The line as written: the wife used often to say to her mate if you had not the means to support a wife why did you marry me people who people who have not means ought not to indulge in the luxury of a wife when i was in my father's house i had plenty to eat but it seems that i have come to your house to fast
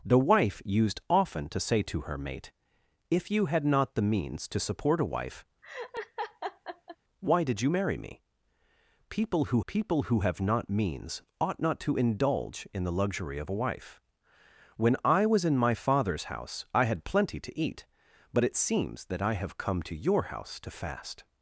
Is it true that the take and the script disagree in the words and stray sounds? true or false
true